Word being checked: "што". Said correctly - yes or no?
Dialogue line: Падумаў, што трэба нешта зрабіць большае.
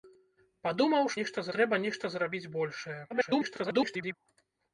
no